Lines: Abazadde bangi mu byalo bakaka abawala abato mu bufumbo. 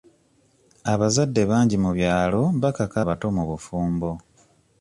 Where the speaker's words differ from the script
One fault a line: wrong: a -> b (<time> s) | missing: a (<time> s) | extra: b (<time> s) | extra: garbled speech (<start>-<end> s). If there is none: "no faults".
missing: abawala (3.0 s)